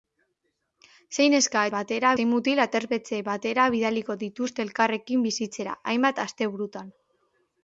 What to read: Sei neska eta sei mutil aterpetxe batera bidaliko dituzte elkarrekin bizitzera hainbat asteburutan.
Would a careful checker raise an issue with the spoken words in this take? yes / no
yes